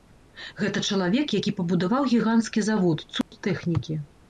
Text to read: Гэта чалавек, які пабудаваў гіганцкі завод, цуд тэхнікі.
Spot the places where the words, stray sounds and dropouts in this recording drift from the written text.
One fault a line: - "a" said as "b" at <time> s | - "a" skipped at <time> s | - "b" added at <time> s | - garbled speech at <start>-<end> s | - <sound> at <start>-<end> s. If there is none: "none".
- dropout at 3.2-3.3 s